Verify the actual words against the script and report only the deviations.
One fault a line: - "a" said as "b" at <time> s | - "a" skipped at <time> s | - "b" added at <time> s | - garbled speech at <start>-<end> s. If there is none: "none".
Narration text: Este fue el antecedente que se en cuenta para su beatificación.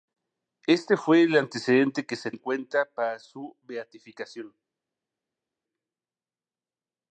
none